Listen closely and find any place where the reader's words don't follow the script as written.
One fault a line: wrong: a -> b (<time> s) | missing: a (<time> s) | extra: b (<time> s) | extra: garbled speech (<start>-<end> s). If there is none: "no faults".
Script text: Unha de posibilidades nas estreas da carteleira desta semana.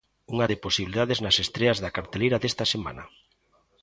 no faults